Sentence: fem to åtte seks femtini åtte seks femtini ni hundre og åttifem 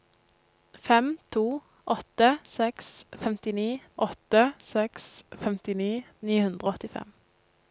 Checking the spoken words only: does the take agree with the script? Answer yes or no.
yes